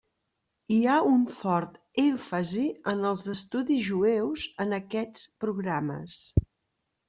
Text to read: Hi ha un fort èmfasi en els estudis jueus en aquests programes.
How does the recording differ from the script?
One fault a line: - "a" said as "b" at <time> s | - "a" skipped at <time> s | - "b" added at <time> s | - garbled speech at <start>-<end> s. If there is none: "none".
none